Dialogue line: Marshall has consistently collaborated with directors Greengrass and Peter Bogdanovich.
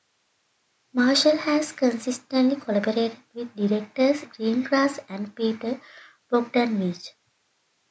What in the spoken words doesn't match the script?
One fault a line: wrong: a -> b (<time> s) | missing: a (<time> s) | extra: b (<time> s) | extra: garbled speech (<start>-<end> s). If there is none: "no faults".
no faults